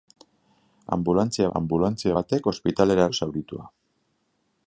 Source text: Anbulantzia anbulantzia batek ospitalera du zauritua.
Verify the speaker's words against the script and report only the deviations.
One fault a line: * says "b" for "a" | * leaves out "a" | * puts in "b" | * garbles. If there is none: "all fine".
all fine